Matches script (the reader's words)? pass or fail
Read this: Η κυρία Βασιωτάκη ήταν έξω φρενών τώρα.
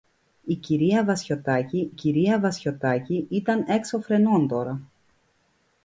fail